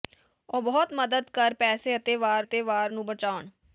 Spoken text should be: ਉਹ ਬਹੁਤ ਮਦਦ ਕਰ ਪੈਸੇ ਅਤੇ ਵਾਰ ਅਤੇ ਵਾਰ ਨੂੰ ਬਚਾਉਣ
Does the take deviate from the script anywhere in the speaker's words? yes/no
no